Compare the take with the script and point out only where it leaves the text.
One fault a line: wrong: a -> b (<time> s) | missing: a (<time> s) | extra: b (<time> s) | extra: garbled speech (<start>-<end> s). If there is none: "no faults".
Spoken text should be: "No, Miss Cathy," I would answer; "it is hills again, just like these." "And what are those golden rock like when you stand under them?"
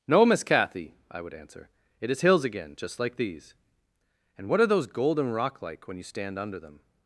no faults